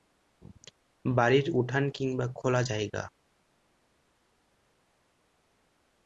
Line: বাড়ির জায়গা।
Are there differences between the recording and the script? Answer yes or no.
yes